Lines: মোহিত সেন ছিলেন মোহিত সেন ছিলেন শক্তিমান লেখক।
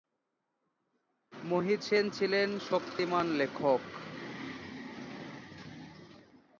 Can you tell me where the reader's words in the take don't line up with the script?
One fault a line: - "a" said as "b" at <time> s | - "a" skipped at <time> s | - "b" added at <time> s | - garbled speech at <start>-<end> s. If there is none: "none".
- "মোহিত সেন ছিলেন" skipped at 2.5 s